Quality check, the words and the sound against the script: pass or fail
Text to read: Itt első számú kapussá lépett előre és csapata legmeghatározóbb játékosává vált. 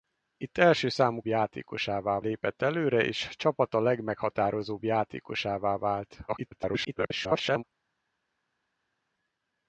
fail